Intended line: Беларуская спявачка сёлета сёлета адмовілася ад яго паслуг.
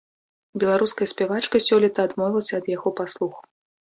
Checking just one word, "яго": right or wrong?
right